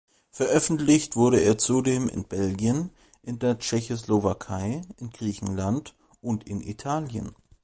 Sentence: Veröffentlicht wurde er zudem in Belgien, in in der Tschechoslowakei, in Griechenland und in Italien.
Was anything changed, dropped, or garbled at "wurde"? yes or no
no